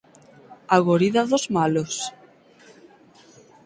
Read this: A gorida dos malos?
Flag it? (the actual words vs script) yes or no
no